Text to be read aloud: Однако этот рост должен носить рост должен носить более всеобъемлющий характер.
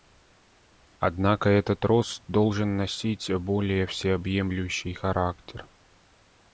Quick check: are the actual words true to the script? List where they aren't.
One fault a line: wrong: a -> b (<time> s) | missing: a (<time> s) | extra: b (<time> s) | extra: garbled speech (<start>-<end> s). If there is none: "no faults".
missing: рост должен носить (3.3 s)